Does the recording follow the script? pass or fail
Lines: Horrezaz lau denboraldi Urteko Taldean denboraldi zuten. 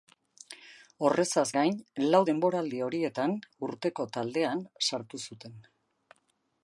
fail